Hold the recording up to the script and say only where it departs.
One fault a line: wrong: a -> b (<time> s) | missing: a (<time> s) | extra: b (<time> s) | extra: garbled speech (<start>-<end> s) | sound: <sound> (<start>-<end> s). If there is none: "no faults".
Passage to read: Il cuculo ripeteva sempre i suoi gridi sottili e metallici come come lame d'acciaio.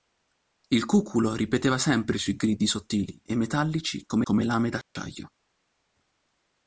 sound: dropout (4.8-5.0 s)